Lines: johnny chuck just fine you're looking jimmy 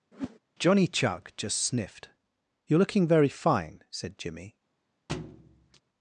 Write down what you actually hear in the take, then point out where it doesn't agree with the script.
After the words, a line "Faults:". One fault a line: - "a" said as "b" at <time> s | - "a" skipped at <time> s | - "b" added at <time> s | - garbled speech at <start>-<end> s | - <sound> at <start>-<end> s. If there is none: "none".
johnny chuck just sniffed you're looking very fine said jimmy
Faults:
- whoosh at 0.1-0.4 s
- "fine" said as "sniffed" at 1.6 s
- "very fine said" added at 3.1 s
- thud at 5.1-5.8 s